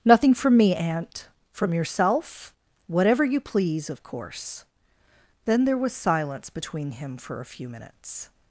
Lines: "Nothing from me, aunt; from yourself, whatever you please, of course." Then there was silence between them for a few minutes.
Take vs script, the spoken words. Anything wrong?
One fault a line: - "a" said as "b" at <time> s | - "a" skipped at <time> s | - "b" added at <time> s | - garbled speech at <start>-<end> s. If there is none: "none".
- "them" said as "him" at 6.9 s